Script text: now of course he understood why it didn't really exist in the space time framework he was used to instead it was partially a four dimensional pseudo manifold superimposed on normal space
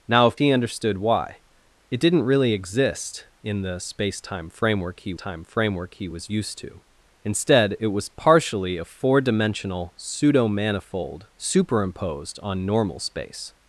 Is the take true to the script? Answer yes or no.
no